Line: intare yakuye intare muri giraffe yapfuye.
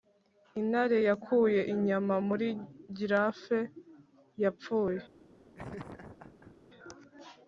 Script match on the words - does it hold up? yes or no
no